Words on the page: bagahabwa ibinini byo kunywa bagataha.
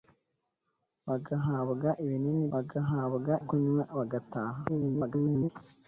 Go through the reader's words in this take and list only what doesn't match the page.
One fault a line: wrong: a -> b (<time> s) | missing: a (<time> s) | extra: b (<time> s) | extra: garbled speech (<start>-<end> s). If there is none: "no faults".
wrong: byo -> bagahabwa (2.5 s)
extra: garbled speech (4.7-5.5 s)